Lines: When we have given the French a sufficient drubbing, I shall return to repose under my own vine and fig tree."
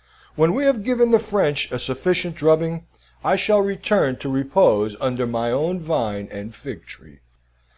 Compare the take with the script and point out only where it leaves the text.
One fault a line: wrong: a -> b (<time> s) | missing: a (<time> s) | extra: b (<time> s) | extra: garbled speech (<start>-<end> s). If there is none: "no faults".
no faults